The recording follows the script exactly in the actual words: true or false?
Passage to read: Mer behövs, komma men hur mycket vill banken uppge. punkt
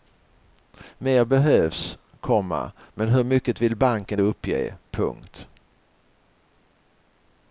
true